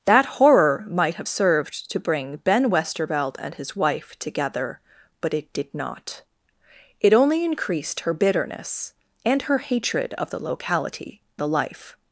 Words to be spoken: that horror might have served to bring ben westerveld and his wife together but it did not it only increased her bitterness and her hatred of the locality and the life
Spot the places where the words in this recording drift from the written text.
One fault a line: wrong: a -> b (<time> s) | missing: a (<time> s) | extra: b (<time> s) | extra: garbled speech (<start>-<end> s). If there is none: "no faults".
missing: and (11.2 s)